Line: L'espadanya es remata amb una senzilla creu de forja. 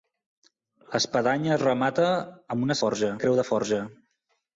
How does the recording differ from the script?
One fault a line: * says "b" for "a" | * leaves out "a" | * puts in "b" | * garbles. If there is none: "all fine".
* says "forja" for "senzilla"